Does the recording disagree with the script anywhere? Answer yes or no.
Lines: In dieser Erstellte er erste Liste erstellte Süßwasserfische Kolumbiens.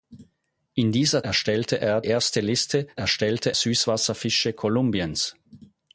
no